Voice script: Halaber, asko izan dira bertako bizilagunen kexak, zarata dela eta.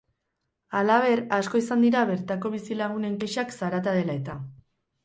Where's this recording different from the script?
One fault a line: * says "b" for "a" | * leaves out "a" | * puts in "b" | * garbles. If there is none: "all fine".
all fine